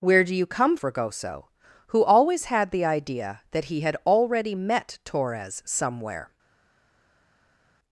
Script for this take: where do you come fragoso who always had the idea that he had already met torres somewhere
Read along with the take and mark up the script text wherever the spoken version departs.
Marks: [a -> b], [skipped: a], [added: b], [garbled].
where do you come fragoso who always had the idea that he had already met torres somewhere